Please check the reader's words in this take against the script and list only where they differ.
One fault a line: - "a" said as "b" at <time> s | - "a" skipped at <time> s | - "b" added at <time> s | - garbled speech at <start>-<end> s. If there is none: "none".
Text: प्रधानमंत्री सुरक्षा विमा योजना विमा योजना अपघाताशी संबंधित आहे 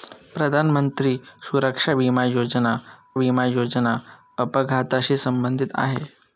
none